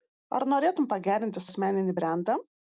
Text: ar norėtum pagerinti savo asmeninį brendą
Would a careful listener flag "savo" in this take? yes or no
yes